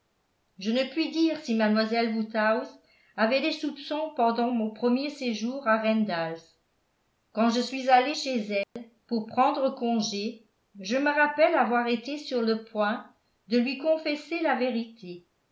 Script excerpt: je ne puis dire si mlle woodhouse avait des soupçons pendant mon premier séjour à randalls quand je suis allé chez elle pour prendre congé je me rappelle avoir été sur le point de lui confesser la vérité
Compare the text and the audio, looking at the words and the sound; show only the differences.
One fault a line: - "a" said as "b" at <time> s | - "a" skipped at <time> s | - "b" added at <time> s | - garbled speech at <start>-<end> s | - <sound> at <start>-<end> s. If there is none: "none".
- dropout at 8.6-8.8 s